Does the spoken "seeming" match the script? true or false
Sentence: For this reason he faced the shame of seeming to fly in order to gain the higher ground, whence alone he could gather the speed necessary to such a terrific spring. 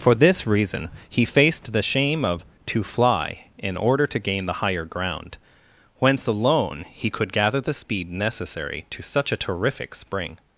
false